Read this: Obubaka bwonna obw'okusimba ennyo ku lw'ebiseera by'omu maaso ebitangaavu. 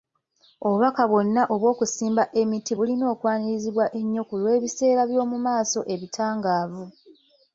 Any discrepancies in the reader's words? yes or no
yes